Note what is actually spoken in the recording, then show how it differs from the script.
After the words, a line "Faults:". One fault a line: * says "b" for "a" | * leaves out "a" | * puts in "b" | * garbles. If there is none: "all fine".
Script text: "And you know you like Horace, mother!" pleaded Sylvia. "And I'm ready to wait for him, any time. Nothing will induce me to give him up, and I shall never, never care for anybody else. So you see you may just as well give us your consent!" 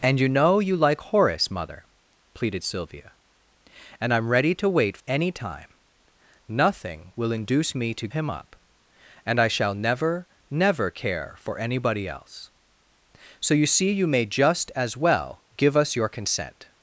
"And you know you like Horace, mother!" pleaded Sylvia. "And I'm ready to wait any time. Nothing will induce me to him up, and I shall never, never care for anybody else. So you see you may just as well give us your consent!"
Faults:
* leaves out "for him"
* leaves out "give"